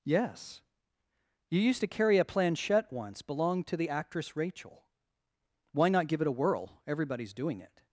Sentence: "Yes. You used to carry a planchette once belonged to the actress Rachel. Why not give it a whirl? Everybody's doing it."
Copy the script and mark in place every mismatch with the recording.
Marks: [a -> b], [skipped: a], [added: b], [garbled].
"Yes. You used to carry a planchette once belonged to the actress Rachel. Why not give it a whirl? Everybody's doing it."